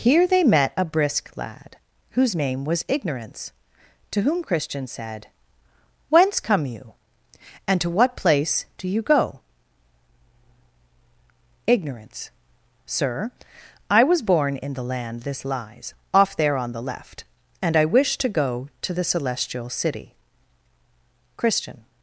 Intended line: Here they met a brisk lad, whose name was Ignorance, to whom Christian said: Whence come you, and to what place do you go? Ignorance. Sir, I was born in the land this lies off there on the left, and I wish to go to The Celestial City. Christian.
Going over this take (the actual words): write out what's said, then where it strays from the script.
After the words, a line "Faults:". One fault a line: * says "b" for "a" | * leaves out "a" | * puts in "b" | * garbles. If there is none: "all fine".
Here they met a brisk lad, whose name was Ignorance, to whom Christian said: Whence come you, and to what place do you go? Ignorance. Sir, I was born in the land this lies off there on the left, and I wish to go to The Celestial City. Christian.
Faults:
all fine